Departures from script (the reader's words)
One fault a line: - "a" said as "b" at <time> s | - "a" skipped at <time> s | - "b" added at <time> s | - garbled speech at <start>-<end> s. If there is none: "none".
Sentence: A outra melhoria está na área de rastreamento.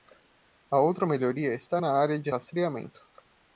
none